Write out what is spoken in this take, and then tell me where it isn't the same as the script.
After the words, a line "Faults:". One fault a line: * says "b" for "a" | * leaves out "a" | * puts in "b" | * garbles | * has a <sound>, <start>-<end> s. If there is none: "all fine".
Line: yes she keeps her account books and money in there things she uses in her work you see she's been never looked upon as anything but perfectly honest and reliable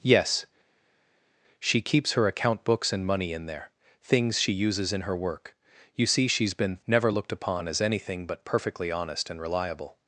yes she keeps her account books and money in there things she uses in her work you see she's been never looked upon as anything but perfectly honest and reliable
Faults:
all fine